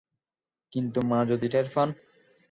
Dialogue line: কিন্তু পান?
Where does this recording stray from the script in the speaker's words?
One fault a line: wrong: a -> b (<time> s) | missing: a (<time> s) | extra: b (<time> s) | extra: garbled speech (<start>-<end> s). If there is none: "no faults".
extra: মা যদি টের (1.0 s)